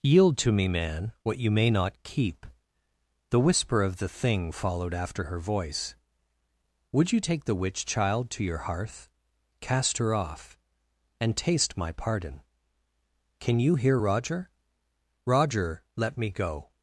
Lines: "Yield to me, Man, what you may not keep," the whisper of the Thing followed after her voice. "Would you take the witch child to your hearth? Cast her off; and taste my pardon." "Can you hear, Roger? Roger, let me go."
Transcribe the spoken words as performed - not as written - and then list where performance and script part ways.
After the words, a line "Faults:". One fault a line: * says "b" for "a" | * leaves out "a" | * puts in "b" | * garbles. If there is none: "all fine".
"Yield to me, Man, what you may not keep," the whisper of the Thing followed after her voice. "Would you take the witch child to your hearth? Cast her off; and taste my pardon." "Can you hear, Roger? Roger, let me go."
Faults:
all fine